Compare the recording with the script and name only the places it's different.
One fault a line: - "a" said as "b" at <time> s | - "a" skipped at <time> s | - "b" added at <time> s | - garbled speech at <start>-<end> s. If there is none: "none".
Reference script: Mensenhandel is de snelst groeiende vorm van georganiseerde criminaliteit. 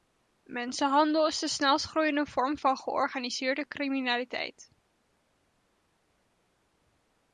none